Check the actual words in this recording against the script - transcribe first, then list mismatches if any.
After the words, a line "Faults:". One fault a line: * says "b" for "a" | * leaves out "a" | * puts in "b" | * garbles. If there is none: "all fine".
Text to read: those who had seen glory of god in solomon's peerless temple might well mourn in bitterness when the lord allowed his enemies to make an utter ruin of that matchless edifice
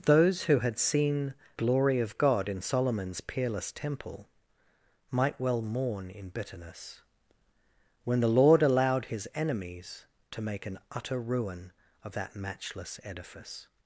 those who had seen glory of god in solomon's peerless temple might well mourn in bitterness when the lord allowed his enemies to make an utter ruin of that matchless edifice
Faults:
all fine